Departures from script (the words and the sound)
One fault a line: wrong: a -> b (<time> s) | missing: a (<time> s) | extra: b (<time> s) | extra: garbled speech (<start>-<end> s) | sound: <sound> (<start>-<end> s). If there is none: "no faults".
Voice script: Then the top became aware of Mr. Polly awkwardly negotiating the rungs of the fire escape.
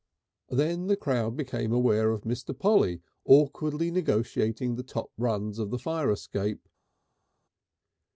wrong: top -> crowd (1.0 s)
extra: top (4.8 s)